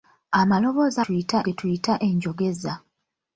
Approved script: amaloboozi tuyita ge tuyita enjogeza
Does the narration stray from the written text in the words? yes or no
no